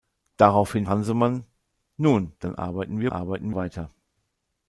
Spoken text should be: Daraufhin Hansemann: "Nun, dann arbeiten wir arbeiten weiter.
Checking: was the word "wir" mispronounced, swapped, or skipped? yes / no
no